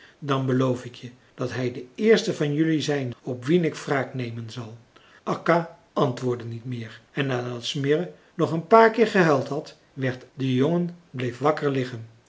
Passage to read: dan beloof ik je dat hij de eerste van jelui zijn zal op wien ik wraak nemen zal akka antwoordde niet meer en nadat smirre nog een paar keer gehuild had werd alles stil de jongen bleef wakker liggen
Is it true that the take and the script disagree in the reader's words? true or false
true